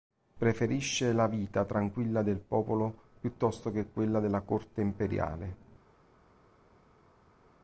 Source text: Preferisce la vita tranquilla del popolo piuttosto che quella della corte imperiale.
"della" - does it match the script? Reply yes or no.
yes